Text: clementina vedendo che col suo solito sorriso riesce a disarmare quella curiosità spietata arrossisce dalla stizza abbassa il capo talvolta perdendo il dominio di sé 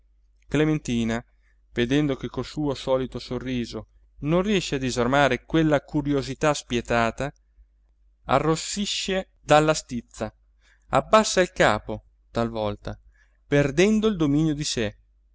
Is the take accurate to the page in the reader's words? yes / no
no